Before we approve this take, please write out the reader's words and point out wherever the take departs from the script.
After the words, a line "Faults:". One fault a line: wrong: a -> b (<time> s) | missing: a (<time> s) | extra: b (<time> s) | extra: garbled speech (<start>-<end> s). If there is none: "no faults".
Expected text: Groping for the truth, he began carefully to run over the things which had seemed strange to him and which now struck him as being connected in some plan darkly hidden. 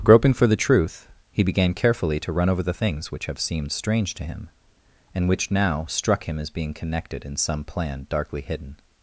Groping for the truth, he began carefully to run over the things which have seemed strange to him and which now struck him as being connected in some plan darkly hidden.
Faults:
wrong: had -> have (3.2 s)